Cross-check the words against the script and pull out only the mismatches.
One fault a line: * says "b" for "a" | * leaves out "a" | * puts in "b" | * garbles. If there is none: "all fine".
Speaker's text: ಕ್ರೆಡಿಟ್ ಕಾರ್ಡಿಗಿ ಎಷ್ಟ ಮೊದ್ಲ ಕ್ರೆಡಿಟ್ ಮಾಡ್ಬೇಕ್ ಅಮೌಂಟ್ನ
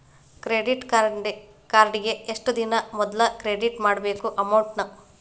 * puts in "ದಿನಾ"